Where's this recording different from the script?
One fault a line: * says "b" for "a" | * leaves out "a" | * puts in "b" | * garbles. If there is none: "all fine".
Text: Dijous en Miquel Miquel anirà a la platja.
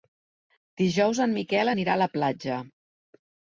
* leaves out "Miquel"